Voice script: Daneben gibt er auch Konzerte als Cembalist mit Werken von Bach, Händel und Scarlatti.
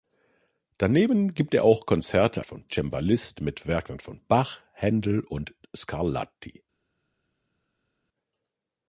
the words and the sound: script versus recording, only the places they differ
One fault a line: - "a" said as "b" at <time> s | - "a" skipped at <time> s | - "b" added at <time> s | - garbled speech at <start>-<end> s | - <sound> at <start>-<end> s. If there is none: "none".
- "als" said as "von" at 2.4 s